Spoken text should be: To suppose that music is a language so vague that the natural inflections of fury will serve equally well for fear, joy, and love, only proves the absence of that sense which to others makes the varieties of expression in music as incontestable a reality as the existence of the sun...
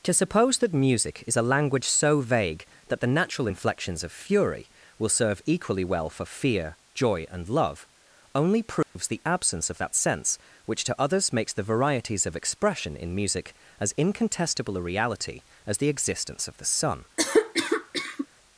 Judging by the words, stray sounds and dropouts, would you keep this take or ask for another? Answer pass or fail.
fail